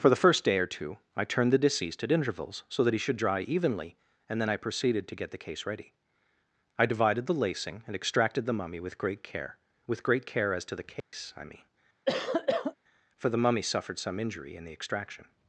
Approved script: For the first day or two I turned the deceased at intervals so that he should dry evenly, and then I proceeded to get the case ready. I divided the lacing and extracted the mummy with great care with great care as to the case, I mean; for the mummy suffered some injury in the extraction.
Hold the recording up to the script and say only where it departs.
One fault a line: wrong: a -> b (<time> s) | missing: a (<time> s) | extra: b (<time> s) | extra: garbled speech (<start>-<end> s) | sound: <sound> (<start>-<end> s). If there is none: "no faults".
sound: dropout (11.0-11.1 s)
sound: cough (12.1-12.7 s)